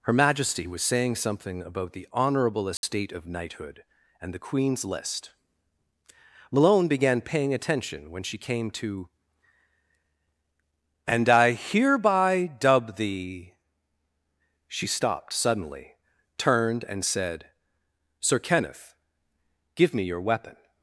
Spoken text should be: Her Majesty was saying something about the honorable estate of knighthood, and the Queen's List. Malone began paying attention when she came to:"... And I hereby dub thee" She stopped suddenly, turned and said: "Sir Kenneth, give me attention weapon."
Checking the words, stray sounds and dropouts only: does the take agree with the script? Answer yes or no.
no